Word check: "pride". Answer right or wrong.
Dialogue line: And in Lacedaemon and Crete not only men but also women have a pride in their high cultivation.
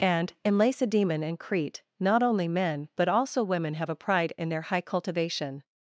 right